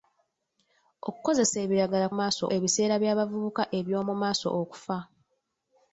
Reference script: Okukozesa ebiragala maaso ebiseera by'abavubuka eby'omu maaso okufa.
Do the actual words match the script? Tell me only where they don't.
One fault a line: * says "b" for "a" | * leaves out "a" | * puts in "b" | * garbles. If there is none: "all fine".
all fine